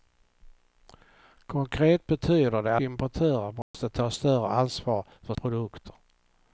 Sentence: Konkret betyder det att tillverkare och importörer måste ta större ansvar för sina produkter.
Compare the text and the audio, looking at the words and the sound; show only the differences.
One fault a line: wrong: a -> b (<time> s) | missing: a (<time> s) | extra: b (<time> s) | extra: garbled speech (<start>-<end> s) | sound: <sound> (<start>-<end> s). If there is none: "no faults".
missing: att tillverkare och (2.8 s)
sound: dropout (3.6-3.7 s)
missing: sina (5.3 s)